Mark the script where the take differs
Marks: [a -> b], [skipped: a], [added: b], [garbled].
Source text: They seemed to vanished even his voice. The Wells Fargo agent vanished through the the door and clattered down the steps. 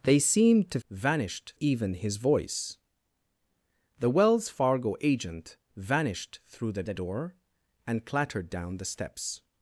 They seemed to vanished even his voice. The Wells Fargo agent vanished through the the door and clattered down the steps.